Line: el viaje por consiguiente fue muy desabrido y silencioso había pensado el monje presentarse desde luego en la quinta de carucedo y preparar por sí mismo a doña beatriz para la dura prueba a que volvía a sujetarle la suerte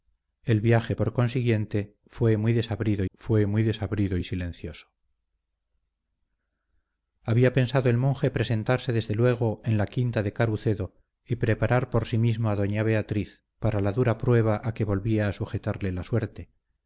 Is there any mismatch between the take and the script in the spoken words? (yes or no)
yes